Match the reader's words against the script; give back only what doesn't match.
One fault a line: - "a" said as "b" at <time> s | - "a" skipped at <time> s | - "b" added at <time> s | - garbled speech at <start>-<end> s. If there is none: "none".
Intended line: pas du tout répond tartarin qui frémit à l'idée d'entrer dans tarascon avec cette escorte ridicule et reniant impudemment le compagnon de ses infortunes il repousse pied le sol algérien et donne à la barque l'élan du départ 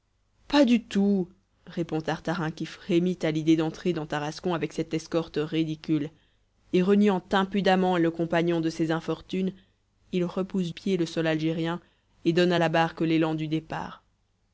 none